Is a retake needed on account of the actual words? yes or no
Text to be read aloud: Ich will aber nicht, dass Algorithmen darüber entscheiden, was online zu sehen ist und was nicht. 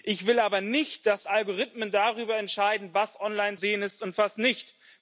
yes